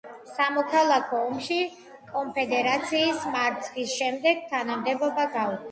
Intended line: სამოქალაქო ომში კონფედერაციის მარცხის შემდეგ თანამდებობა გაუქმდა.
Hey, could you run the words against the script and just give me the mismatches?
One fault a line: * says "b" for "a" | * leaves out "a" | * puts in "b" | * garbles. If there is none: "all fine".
all fine